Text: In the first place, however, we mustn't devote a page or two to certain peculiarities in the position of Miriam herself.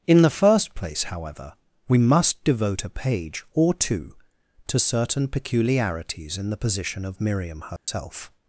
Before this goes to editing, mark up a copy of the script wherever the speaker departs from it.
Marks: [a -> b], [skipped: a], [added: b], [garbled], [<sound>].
In the first place, however, we [mustn't -> must] devote a page or two to certain peculiarities in the position of Miriam herself. [dropout]